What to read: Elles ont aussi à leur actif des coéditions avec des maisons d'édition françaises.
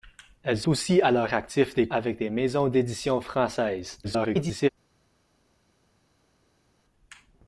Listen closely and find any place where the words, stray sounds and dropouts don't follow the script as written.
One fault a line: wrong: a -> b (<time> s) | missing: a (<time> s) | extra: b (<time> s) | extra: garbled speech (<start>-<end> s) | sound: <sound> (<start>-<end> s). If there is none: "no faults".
missing: ont (0.7 s)
missing: coéditions (1.9 s)
extra: garbled speech (4.0-4.7 s)